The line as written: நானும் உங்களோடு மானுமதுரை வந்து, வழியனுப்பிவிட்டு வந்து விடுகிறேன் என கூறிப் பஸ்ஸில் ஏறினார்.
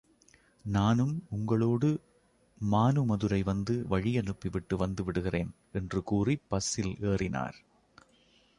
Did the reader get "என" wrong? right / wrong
wrong